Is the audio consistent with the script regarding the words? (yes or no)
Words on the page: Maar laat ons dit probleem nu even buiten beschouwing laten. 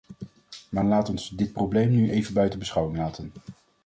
yes